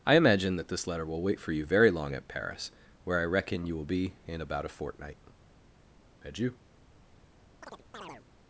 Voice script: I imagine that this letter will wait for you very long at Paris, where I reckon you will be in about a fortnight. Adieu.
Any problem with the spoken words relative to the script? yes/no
no